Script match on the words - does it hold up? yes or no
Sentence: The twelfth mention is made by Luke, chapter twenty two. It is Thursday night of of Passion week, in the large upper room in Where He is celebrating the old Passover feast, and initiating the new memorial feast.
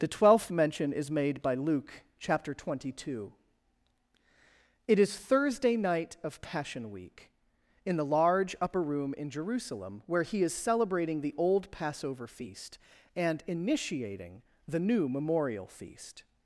no